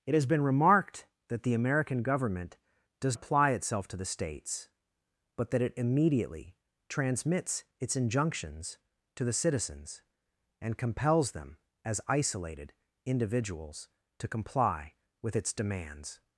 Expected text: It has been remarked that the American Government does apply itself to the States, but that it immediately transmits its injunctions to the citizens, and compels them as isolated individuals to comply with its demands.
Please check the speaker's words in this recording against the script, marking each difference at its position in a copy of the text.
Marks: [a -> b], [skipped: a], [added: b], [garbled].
It has been remarked that the American Government does apply itself to the States, but that it immediately transmits its injunctions to the citizens, and compels them as isolated individuals to comply with its demands.